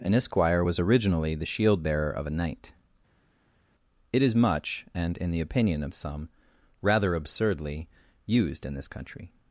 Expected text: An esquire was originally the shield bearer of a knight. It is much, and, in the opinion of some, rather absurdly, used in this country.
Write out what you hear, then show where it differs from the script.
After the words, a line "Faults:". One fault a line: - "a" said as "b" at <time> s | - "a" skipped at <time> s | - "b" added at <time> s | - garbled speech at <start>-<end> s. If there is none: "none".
An esquire was originally the shield bearer of a knight. It is much, and, in the opinion of some, rather absurdly, used in this country.
Faults:
none